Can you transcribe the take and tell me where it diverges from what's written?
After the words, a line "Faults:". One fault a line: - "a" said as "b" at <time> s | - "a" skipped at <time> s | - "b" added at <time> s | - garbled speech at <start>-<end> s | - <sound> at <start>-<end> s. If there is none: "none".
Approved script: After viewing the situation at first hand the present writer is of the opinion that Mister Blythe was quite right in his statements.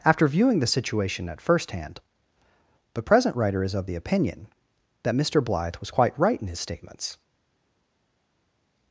After viewing the situation at first hand the present writer is of the opinion that Mister Blythe was quite right in his statements.
Faults:
none